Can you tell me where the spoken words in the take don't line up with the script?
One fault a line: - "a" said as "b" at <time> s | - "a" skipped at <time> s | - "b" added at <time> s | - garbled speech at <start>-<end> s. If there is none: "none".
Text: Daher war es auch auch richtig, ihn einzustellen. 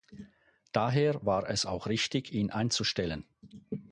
- "auch" skipped at 1.9 s